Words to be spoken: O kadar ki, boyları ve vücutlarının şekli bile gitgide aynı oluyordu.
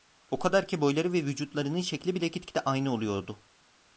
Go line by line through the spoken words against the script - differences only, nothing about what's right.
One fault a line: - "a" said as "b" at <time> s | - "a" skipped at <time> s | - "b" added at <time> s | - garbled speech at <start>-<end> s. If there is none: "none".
none